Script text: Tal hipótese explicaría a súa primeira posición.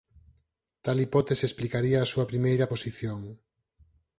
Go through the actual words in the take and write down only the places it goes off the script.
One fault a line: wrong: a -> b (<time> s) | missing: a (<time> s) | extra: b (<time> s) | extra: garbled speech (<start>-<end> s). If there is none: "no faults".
no faults